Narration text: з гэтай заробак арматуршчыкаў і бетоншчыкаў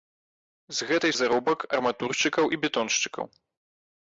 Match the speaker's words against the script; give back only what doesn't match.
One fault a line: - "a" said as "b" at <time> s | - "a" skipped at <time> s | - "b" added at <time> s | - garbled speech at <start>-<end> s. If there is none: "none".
none